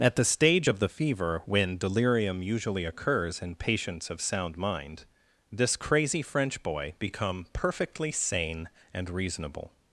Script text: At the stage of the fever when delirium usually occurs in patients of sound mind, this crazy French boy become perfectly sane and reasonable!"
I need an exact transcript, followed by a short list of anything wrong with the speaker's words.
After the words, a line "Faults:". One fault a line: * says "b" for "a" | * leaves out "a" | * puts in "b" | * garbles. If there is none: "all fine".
At the stage of the fever when delirium usually occurs in patients of sound mind, this crazy French boy become perfectly sane and reasonable!"
Faults:
all fine